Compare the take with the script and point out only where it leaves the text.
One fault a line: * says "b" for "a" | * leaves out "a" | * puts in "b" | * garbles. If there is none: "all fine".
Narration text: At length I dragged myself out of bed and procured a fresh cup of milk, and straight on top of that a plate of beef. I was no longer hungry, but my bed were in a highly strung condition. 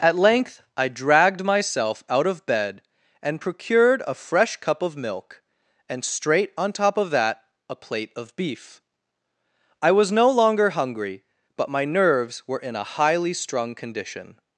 * says "nerves" for "bed"